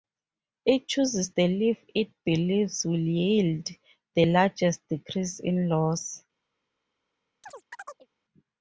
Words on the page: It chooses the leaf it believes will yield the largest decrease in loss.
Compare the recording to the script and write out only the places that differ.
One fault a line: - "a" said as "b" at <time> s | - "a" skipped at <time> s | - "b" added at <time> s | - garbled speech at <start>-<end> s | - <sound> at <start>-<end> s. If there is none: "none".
- chirp at 7.4-8.1 s